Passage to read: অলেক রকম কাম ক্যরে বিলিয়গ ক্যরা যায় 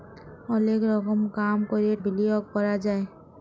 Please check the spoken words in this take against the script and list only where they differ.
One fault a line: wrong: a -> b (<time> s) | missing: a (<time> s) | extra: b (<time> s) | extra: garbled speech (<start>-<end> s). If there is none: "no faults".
no faults